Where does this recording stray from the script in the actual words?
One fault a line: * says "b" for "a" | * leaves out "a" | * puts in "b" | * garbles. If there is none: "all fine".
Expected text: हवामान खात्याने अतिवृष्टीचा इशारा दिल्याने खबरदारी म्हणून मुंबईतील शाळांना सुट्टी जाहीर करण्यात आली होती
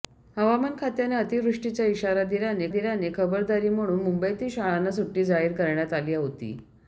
* puts in "दिल्याने"